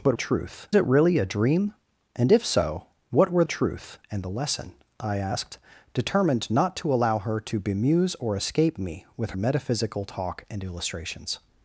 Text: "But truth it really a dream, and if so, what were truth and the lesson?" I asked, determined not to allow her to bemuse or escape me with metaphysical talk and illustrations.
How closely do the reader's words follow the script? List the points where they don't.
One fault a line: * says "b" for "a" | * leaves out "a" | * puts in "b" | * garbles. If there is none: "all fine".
all fine